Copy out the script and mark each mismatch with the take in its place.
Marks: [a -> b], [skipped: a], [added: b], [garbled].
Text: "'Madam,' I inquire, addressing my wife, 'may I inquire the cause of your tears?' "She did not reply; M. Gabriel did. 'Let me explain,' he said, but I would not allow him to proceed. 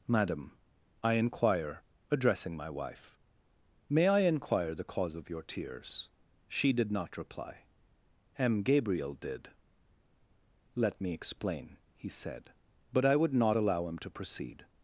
"'Madam,' I inquire, addressing my wife, 'may I inquire the cause of your tears?' "She did not reply; M. Gabriel did. 'Let me explain,' he said, but I would not allow him to proceed.